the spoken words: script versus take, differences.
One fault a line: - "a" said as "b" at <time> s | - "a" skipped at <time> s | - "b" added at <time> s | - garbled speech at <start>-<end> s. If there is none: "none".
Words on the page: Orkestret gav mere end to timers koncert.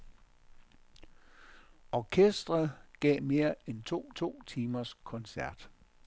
- "to" added at 4.1 s